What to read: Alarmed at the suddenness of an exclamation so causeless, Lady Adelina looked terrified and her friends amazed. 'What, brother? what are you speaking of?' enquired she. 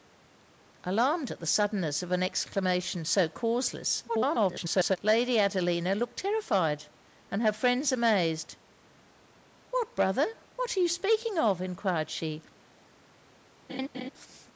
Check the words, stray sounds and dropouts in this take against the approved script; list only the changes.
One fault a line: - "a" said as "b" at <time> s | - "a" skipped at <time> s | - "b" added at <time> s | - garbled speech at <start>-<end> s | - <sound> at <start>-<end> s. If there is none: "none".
- garbled speech at 4.1-5.0 s
- laugh at 13.7-14.1 s